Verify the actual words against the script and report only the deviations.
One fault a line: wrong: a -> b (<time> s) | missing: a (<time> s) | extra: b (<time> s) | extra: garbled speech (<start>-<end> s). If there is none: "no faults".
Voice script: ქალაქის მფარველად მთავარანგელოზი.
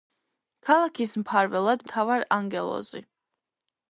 no faults